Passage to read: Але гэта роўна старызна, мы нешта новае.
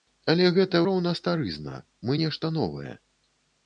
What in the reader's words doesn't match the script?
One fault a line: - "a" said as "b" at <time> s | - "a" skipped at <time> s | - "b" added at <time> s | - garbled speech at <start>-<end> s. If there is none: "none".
none